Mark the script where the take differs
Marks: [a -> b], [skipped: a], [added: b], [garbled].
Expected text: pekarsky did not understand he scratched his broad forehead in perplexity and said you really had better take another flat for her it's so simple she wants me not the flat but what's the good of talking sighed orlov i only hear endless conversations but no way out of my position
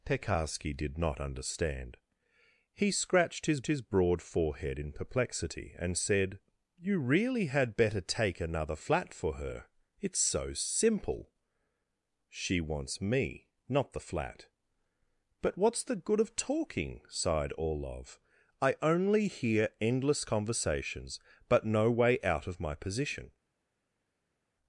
pekarsky did not understand he scratched his [added: his] broad forehead in perplexity and said you really had better take another flat for her it's so simple she wants me not the flat but what's the good of talking sighed orlov i only hear endless conversations but no way out of my position